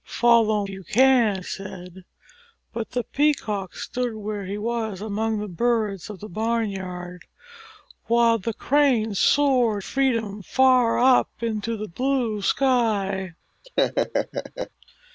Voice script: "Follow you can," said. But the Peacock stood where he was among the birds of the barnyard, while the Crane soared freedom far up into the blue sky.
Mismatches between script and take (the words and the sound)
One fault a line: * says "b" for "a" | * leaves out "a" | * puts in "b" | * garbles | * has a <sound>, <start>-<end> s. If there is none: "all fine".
* has a laugh, 13.6-14.7 s